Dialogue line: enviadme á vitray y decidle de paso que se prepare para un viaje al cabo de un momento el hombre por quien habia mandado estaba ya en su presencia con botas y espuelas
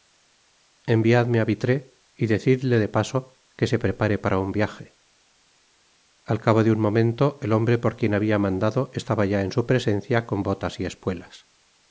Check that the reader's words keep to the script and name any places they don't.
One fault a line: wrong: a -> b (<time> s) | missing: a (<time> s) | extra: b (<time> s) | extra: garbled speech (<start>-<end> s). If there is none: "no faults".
no faults